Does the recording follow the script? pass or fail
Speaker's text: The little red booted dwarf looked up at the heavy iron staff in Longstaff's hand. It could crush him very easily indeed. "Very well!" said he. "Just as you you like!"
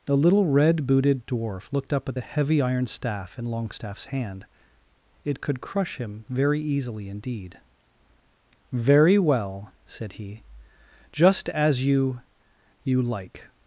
pass